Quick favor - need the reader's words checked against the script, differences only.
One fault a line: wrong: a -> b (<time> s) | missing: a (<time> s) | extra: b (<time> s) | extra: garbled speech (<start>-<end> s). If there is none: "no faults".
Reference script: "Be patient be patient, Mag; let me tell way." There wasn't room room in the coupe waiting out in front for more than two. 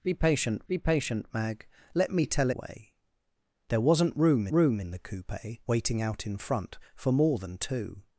no faults